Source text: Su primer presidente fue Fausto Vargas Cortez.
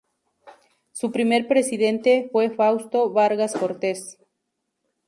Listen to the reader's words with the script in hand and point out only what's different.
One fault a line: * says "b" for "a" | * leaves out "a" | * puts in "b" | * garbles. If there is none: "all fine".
all fine